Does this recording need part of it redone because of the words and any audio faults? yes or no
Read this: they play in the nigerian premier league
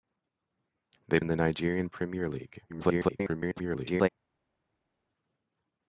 yes